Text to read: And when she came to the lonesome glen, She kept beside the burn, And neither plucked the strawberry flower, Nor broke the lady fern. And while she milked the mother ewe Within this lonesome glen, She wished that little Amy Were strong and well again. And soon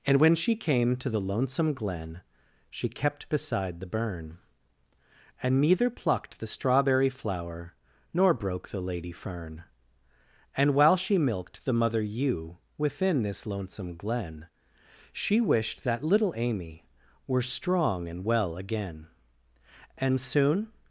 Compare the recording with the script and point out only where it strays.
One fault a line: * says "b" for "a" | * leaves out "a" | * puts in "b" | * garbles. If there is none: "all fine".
all fine